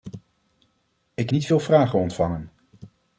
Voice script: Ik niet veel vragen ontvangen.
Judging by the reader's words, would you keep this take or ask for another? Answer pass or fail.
pass